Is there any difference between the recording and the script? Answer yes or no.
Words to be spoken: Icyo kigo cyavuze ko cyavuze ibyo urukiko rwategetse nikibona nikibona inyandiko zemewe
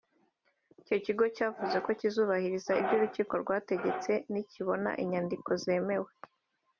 yes